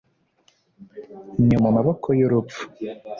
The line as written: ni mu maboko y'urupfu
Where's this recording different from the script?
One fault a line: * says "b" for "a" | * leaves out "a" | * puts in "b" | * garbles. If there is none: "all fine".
all fine